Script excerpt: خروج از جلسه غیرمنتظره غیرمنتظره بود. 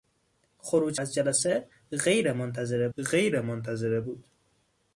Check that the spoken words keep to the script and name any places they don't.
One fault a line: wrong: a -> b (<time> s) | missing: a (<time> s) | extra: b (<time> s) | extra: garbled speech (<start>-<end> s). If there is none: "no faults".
no faults